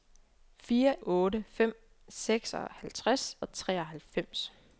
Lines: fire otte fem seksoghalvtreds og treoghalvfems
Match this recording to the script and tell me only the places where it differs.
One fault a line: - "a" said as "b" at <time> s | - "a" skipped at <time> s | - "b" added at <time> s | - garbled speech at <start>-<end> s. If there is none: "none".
none